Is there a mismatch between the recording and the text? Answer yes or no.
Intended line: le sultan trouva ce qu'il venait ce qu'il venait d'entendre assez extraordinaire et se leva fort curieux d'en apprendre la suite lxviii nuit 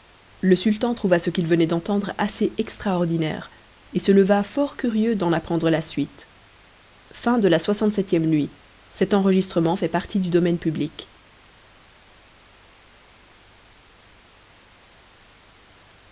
yes